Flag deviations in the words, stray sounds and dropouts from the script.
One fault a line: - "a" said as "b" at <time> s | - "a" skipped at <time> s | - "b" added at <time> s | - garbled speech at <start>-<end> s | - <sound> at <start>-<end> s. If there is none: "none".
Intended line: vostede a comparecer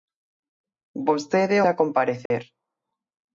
- dropout at 2.3-2.3 s